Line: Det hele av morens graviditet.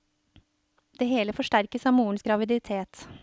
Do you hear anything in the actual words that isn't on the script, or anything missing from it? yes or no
yes